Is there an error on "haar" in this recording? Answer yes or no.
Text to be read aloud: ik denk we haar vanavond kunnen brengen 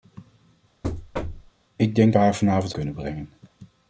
no